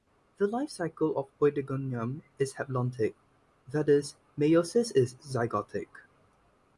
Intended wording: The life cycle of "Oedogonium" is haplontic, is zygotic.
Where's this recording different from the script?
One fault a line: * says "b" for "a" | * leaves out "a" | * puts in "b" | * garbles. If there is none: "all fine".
* puts in "that is meiosis"